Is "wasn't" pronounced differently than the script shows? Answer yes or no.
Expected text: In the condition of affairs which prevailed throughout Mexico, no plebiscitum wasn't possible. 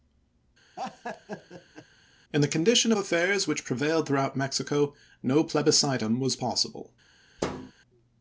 yes